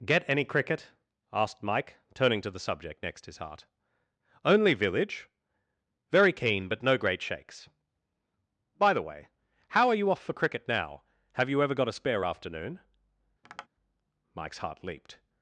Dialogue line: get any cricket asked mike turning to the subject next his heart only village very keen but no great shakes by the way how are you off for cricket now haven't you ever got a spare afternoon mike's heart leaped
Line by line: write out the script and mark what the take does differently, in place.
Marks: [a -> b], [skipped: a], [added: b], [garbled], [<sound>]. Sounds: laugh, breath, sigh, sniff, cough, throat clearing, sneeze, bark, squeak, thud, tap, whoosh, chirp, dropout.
get any cricket asked mike turning to the subject next his heart only village very keen but no great shakes by the way how are you off for cricket now [haven't -> have] you ever got a spare afternoon [tap] mike's heart leaped